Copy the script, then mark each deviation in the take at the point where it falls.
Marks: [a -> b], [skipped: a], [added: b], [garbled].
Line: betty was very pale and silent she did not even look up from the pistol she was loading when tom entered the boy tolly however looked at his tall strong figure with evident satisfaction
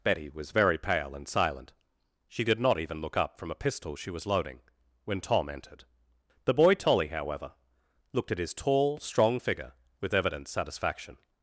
betty was very pale and silent she did not even look up from [the -> a] pistol she was loading when tom entered the boy tolly however looked at his tall strong figure with evident satisfaction